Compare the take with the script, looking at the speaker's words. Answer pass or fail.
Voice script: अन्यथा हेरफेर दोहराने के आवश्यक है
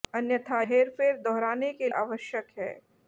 pass